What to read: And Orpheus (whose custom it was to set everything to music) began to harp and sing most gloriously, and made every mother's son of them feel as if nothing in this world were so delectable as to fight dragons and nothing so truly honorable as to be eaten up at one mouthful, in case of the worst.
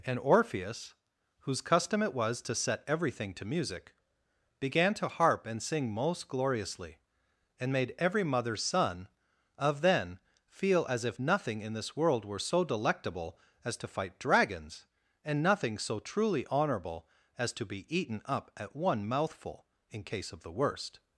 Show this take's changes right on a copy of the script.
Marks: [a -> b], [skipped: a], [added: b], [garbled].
And Orpheus (whose custom it was to set everything to music) began to harp and sing most gloriously, and made every mother's son of [them -> then] feel as if nothing in this world were so delectable as to fight dragons and nothing so truly honorable as to be eaten up at one mouthful, in case of the worst.